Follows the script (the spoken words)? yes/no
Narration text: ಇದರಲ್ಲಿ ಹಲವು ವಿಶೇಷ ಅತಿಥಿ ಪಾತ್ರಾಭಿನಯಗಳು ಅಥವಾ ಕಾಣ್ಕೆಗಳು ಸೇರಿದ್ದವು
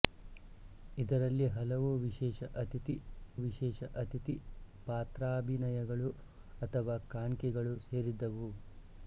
no